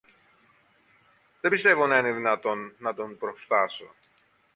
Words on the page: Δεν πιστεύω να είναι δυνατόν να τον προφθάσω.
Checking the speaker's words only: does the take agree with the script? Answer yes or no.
yes